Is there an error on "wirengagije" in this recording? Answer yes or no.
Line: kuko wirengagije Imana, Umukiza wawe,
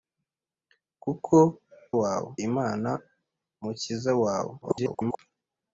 yes